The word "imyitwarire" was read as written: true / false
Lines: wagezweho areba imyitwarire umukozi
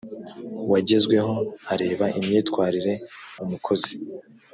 true